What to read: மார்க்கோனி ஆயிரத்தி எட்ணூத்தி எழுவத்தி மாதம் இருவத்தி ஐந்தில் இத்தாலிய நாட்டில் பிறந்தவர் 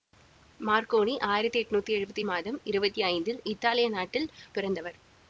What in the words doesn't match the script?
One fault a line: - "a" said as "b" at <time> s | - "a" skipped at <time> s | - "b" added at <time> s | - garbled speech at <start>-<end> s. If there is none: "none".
none